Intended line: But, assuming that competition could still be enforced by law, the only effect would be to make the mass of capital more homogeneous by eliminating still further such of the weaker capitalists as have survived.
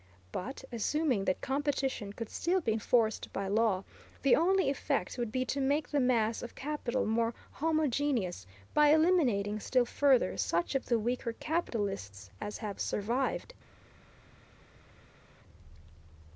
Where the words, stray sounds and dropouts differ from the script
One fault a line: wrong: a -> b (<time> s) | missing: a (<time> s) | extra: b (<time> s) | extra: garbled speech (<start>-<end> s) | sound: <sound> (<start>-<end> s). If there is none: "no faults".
no faults